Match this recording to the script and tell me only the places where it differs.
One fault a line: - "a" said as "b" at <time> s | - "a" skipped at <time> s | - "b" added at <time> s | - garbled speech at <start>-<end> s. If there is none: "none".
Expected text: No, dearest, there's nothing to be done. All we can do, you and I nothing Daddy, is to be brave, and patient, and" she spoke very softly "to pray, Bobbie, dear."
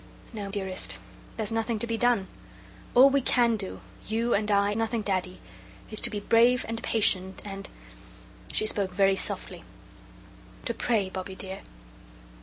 none